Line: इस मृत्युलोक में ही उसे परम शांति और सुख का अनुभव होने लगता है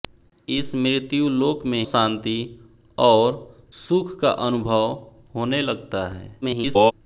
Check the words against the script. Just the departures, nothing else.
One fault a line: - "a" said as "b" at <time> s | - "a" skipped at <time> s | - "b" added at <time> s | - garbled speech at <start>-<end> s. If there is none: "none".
- "ही उसे परम" skipped at 1.8 s
- garbled speech at 6.4-6.9 s